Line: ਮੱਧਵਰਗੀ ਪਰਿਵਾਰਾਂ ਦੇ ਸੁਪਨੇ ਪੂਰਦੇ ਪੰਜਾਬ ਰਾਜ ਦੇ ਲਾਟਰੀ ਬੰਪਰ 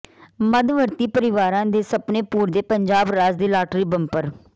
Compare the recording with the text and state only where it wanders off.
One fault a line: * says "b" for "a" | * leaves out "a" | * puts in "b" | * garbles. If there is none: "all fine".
all fine